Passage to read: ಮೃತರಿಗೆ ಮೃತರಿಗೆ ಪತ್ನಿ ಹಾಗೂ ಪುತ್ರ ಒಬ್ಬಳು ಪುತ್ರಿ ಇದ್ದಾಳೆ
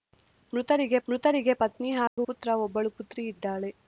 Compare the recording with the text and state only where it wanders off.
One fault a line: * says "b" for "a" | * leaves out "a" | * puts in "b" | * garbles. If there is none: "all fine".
all fine